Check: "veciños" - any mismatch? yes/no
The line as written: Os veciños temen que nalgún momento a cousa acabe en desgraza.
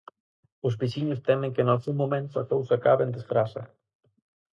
no